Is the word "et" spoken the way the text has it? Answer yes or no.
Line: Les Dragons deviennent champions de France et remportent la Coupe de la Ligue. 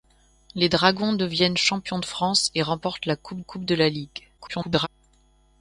yes